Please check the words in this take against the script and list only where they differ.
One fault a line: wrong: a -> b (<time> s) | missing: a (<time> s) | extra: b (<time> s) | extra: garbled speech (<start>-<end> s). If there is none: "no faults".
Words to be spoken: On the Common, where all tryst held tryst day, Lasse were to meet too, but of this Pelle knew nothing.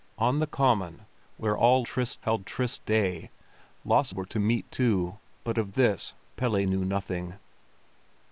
no faults